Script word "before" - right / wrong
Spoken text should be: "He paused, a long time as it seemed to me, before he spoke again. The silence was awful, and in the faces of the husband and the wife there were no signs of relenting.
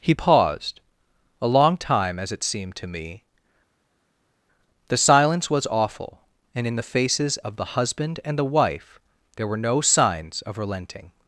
wrong